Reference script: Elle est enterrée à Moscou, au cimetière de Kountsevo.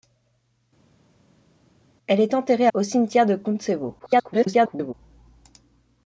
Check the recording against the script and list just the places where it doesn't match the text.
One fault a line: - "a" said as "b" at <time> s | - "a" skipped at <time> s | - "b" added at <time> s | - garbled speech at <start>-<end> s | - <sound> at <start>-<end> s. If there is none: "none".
- "à Moscou" skipped at 2.7 s
- garbled speech at 4.0-4.9 s